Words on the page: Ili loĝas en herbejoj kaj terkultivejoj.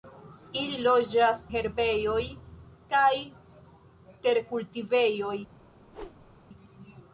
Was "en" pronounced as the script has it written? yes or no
no